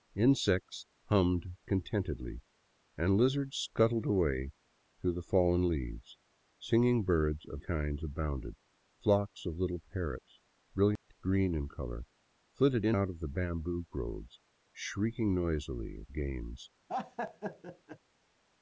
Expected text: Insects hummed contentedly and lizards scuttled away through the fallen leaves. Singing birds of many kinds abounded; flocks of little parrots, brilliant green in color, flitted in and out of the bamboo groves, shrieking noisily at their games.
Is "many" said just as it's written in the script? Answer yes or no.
no